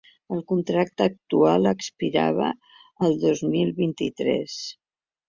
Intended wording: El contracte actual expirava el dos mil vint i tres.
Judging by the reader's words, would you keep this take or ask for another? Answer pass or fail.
pass